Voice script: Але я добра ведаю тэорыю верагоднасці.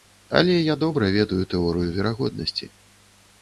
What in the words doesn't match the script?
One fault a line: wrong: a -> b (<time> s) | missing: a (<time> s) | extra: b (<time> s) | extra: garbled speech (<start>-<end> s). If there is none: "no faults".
no faults